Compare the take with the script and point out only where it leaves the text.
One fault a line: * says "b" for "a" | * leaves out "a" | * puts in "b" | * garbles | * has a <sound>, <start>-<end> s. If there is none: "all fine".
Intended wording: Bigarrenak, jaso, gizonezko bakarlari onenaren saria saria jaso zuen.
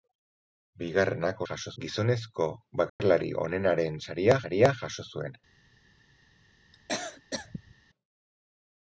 * has a dropout, 2.9-3.0 s
* has a cough, 6.7-7.8 s